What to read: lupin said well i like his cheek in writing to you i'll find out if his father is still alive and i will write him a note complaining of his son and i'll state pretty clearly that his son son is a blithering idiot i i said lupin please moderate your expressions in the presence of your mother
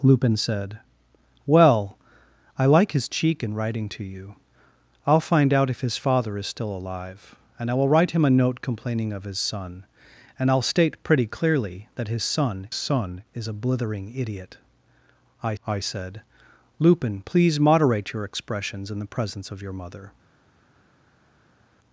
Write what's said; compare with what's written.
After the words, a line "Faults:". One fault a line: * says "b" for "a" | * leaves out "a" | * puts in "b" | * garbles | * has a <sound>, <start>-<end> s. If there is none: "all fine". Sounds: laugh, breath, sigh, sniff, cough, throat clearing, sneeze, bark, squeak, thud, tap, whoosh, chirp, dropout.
lupin said well i like his cheek in writing to you i'll find out if his father is still alive and i will write him a note complaining of his son and i'll state pretty clearly that his son son is a blithering idiot i i said lupin please moderate your expressions in the presence of your mother
Faults:
all fine